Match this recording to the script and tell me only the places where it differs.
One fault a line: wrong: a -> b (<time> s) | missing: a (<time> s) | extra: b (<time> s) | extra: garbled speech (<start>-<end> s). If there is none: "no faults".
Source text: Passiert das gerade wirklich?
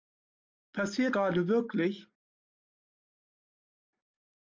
missing: das (1.1 s)